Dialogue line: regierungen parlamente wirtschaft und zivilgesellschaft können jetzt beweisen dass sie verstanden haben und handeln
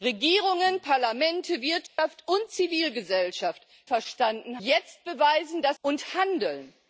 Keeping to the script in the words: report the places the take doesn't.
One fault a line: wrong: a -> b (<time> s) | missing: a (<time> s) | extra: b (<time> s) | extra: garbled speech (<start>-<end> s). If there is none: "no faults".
wrong: können -> verstanden (3.8 s)
missing: sie verstanden haben (5.8 s)